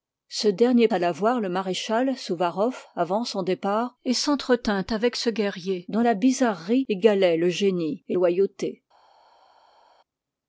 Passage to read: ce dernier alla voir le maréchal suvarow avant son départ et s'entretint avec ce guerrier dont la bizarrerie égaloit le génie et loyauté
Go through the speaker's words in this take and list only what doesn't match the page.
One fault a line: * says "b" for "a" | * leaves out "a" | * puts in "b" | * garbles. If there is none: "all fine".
all fine